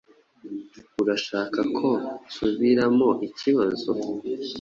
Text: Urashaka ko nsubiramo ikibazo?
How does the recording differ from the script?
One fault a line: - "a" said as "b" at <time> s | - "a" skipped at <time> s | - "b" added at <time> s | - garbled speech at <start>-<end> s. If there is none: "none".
none